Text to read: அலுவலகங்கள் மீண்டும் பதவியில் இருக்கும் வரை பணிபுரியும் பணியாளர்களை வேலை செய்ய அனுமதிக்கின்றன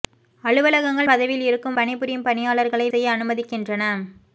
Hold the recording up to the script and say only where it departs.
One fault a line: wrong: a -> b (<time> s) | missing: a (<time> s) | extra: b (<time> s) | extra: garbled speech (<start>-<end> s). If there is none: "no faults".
missing: மீண்டும் (1.1 s)
missing: வரை (1.8 s)
missing: வேலை (2.9 s)